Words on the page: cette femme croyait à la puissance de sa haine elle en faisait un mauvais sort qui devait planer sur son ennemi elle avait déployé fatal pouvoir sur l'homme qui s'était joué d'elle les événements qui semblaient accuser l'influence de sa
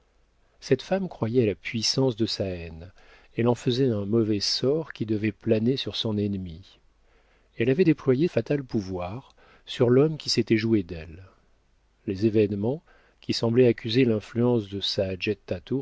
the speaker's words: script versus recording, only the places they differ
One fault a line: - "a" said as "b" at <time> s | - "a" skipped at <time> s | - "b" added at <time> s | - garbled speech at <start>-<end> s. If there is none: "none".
none